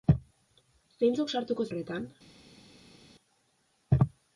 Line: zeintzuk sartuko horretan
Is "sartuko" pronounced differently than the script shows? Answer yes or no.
no